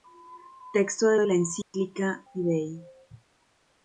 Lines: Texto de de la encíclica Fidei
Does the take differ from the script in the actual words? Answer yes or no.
no